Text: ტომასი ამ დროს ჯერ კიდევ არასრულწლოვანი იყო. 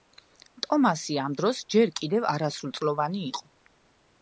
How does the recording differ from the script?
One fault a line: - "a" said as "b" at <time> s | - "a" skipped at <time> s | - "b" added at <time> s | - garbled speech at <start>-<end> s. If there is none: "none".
none